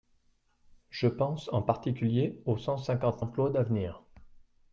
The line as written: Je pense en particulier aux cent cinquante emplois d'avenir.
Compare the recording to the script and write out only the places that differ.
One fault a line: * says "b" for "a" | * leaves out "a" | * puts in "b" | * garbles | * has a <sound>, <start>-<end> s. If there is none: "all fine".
all fine